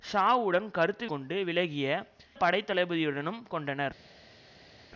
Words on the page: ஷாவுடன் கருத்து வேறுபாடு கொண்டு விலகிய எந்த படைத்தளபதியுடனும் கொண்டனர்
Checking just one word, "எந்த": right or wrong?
wrong